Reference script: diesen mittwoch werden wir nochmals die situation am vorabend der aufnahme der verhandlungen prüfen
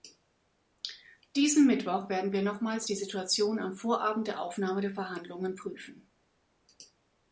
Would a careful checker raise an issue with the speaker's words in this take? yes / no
no